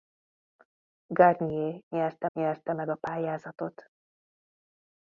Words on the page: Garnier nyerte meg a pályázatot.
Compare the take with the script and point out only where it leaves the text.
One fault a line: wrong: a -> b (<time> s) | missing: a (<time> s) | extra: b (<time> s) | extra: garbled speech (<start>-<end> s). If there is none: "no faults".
extra: nyerte (2.3 s)